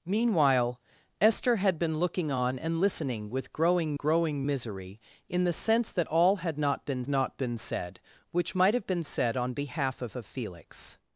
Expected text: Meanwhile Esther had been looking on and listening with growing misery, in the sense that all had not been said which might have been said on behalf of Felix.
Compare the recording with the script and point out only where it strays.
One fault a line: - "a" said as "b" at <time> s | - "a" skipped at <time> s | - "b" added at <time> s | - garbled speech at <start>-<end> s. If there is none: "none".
- "growing" added at 4.0 s
- "not been" added at 7.1 s
- "of" added at 10.1 s